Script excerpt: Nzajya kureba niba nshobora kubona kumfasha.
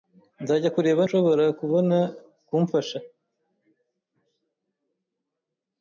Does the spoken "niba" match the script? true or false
false